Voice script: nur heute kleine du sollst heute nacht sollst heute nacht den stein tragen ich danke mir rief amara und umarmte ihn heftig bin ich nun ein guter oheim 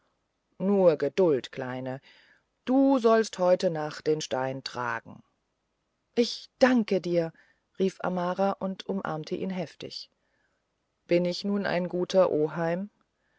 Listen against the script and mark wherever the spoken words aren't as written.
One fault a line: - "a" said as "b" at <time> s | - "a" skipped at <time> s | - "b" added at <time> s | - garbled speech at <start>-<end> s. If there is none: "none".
- "heute" said as "geduld" at 1.0 s
- "sollst heute nacht" skipped at 4.1 s
- "mir" said as "dir" at 7.0 s